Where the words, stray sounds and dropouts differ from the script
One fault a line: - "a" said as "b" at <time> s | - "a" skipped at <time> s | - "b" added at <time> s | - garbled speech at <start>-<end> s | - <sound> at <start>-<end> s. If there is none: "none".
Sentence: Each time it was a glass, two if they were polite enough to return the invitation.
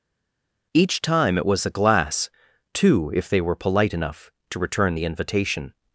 none